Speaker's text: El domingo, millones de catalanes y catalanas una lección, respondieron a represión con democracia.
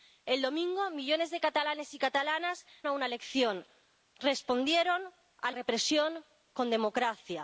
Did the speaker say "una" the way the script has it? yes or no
yes